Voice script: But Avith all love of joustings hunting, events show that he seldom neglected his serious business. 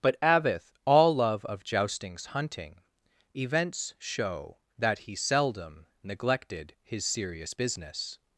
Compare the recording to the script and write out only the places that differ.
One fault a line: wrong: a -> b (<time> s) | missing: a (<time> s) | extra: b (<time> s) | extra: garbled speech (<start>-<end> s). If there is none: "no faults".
no faults